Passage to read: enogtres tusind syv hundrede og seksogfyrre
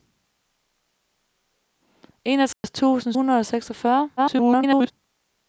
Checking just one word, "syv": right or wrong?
wrong